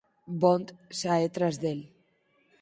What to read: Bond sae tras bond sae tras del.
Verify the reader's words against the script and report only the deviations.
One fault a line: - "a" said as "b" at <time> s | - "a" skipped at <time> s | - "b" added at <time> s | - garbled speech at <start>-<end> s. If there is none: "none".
- "bond sae tras" skipped at 1.6 s